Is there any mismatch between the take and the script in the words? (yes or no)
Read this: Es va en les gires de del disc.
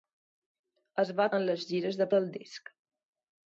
no